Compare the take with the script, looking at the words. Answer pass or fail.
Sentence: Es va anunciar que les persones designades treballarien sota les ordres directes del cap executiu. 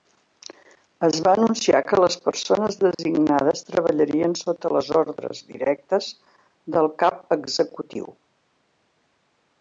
pass